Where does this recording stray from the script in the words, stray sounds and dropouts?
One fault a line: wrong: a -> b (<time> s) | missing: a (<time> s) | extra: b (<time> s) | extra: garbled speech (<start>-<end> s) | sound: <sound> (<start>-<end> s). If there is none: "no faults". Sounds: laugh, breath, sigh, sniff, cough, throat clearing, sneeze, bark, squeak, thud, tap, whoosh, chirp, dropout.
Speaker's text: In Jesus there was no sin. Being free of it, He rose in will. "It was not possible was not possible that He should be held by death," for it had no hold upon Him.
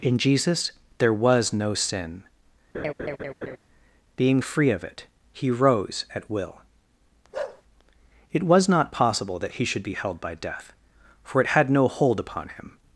sound: laugh (2.7-3.6 s)
wrong: in -> at (6.1 s)
sound: bark (7.3-7.6 s)
missing: was not possible (9.4 s)